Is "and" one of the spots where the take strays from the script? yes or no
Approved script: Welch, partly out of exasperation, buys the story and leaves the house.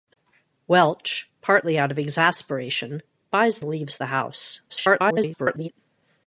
yes